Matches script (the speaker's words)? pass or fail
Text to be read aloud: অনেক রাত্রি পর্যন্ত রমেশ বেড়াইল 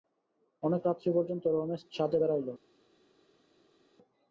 fail